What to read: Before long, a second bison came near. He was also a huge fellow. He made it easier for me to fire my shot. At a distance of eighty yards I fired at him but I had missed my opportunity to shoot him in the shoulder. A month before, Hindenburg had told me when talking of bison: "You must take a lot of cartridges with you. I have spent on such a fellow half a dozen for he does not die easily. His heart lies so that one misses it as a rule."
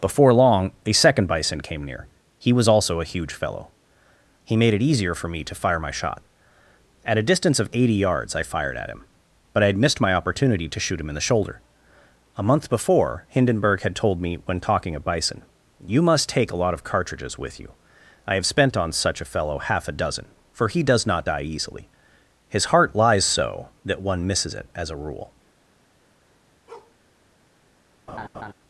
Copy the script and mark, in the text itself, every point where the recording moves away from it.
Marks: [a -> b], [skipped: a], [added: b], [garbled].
Before long, a second bison came near. He was also a huge fellow. He made it easier for me to fire my shot. At a distance of eighty yards I fired at him but I had missed my opportunity to shoot him in the shoulder. A month before, Hindenburg had told me when talking of bison: "You must take a lot of cartridges with you. I have spent on such a fellow half a dozen for he does not die easily. His heart lies so that one misses it as a rule."